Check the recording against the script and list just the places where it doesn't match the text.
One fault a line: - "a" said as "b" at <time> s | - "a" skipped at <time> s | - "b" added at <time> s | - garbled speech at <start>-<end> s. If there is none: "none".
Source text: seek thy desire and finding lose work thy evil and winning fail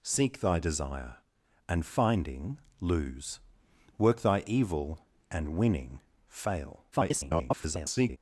- garbled speech at 6.9-8.2 s